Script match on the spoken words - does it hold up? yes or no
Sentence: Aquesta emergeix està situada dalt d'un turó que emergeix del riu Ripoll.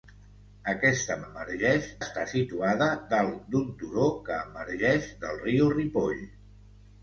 yes